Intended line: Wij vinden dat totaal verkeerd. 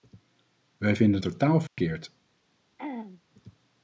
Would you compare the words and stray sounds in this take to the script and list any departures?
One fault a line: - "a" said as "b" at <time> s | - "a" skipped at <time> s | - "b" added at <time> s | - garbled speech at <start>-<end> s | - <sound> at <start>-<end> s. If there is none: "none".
- "dat" skipped at 1.2 s
- dropout at 1.7-1.8 s
- throat clearing at 2.8-3.2 s